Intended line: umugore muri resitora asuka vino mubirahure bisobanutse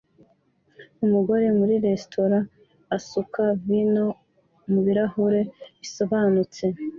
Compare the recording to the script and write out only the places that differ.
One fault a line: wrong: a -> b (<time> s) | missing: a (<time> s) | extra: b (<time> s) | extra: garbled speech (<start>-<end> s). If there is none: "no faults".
no faults